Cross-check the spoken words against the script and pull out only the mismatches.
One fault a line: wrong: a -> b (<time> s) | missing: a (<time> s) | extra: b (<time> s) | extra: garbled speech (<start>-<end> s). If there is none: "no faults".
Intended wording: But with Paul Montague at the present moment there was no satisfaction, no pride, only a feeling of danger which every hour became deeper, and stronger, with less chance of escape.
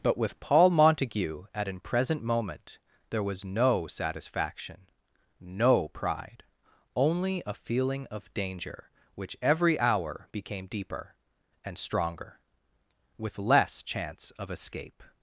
wrong: the -> an (1.7 s)